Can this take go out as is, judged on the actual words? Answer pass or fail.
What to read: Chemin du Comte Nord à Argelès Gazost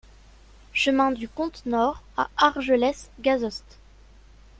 pass